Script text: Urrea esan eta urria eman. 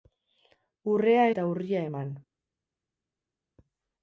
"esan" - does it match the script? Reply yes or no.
no